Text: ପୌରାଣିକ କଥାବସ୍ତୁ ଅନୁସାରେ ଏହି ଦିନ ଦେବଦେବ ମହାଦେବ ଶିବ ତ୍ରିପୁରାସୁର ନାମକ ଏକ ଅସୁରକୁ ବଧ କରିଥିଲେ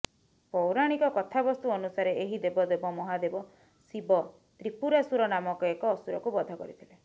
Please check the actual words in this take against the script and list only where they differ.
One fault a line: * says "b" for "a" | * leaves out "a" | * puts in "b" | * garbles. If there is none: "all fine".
* leaves out "ଦିନ"